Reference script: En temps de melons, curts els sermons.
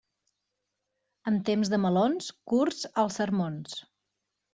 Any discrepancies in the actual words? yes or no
no